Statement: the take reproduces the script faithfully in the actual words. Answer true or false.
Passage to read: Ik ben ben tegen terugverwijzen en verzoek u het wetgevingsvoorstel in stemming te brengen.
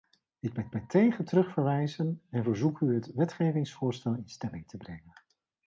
true